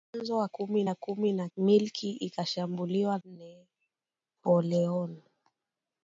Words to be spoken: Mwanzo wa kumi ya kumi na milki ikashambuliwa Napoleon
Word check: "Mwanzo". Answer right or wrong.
right